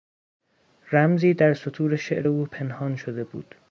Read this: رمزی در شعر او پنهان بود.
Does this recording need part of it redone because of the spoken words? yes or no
yes